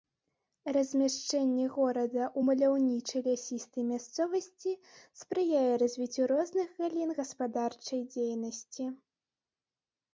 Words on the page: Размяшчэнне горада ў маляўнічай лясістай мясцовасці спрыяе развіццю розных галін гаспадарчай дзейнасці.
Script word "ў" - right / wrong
right